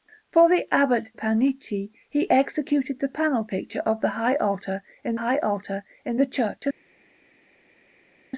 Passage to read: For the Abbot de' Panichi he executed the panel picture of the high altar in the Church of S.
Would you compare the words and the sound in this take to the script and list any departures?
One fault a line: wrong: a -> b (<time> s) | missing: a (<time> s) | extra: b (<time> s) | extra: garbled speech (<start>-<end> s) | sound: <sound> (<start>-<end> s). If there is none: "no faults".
missing: de (1.1 s)
extra: high altar in (5.2 s)